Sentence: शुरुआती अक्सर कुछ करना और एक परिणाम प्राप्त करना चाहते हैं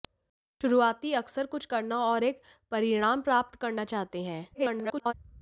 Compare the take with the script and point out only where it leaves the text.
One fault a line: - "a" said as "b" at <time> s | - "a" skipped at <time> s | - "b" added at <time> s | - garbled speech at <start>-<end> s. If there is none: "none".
- garbled speech at 4.5-5.1 s